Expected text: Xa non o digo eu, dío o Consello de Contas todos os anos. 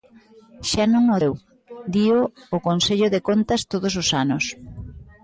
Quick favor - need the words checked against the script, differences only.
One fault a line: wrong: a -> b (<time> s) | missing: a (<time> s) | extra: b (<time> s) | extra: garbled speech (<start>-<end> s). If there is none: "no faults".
missing: digo (1.2 s)